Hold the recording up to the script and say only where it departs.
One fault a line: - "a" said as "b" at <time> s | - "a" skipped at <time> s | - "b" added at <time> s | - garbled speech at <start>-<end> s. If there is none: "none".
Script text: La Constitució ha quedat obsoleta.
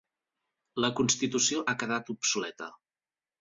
none